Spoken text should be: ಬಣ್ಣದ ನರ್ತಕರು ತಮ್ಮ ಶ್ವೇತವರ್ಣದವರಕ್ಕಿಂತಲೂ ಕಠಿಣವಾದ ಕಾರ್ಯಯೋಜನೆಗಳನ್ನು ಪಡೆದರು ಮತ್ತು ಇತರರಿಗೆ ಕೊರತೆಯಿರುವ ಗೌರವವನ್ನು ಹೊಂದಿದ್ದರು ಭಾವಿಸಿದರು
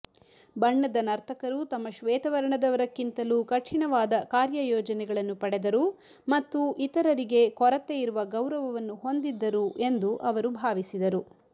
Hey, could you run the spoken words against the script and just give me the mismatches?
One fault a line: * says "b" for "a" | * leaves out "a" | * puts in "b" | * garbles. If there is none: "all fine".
* puts in "ಎಂದು ಅವರು"